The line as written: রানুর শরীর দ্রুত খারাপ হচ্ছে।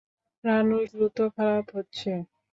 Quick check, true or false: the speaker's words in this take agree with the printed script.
false